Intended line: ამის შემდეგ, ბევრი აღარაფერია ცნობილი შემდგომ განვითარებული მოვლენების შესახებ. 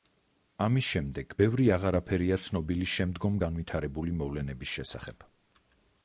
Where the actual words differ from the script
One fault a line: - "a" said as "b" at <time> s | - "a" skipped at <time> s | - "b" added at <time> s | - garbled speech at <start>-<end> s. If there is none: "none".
none